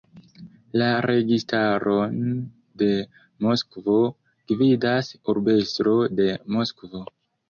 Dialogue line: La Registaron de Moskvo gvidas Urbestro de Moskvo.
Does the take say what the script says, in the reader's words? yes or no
yes